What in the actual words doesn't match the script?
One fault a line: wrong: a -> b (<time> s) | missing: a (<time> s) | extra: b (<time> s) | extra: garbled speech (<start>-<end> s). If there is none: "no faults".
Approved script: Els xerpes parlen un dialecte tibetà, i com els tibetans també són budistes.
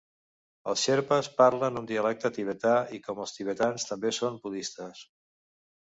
no faults